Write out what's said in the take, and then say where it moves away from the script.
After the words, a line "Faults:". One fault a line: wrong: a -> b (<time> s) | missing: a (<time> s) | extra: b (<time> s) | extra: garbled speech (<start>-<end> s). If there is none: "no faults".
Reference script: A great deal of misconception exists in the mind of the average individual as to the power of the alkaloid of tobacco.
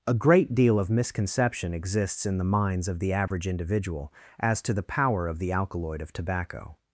A great deal of misconception exists in the minds of the average individual as to the power of the alkaloid of tobacco.
Faults:
wrong: mind -> minds (2.4 s)